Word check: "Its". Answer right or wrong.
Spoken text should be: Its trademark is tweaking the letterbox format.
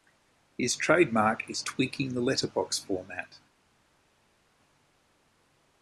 wrong